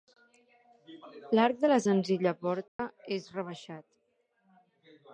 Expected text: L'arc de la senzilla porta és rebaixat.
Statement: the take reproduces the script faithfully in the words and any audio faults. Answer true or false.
false